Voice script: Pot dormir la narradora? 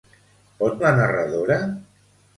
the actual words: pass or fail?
fail